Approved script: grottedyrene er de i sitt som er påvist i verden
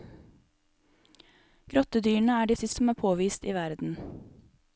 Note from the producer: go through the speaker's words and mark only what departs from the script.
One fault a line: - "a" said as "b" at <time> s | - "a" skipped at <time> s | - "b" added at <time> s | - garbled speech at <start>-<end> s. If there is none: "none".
none